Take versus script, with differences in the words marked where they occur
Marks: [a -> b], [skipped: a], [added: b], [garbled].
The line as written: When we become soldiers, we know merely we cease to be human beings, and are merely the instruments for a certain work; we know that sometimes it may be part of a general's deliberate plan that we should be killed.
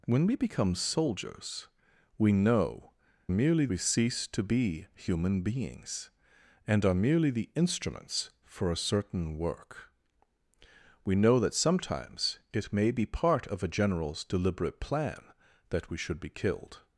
When we become soldiers, we know merely we cease to be human beings, and are merely the instruments for a certain work; we know that sometimes it may be part of a general's deliberate plan that we should be killed.